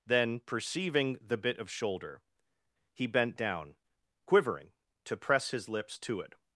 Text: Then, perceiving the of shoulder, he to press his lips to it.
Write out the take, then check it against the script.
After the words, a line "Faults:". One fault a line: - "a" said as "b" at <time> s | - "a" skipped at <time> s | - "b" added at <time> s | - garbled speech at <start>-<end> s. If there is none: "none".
Then, perceiving the bit of shoulder, he bent down quivering, to press his lips to it.
Faults:
- "bit" added at 1.4 s
- "bent down quivering" added at 3.1 s